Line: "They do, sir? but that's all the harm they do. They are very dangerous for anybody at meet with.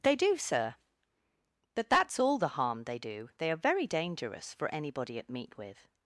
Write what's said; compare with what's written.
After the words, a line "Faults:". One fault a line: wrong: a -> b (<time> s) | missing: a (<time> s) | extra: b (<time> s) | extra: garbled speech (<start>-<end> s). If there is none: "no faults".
"They do, sir? but that's all the harm they do. They are very dangerous for anybody at meet with.
Faults:
no faults